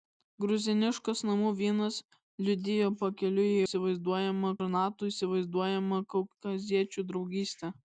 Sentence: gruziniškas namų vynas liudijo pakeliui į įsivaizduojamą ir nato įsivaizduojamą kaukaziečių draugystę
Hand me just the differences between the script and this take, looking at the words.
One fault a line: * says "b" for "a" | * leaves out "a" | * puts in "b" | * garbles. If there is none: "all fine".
all fine